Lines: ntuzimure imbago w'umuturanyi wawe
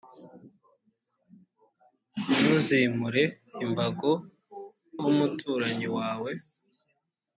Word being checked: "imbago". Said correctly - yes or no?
yes